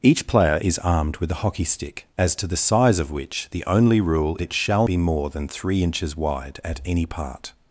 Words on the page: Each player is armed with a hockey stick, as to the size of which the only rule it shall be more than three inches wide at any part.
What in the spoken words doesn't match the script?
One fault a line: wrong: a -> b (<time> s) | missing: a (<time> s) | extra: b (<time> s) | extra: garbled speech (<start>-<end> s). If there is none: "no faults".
no faults